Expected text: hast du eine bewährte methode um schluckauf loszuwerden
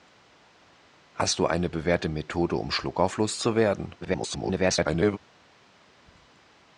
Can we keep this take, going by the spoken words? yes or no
no